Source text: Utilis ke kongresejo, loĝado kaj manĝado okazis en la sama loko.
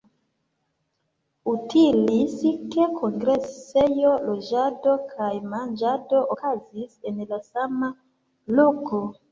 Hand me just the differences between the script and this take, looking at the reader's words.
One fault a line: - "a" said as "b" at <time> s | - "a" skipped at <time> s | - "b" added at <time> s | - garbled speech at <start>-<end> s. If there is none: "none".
none